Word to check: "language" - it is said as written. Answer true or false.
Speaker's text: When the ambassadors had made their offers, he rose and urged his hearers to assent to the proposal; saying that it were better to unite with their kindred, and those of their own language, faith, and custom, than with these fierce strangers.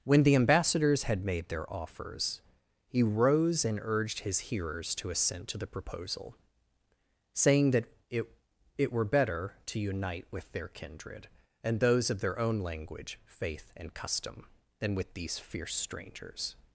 true